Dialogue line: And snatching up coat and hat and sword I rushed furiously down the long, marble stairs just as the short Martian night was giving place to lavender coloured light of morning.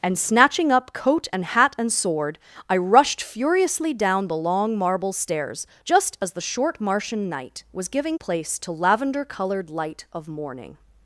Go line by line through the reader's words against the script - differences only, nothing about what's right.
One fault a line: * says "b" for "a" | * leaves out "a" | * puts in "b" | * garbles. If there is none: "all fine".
all fine